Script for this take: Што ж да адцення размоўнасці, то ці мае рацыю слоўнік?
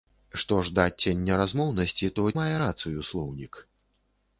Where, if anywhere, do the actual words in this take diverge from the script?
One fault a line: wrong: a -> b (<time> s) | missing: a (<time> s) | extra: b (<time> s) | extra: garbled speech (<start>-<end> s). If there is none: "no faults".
missing: ці (2.2 s)